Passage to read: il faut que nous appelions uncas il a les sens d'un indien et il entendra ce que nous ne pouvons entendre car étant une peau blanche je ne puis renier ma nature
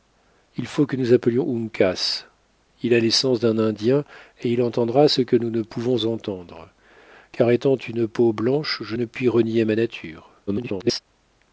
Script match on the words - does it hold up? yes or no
no